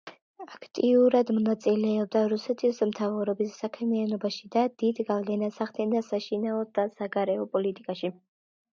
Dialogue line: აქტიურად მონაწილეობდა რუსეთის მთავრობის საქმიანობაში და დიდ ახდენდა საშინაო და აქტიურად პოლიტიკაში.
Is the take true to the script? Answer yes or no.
no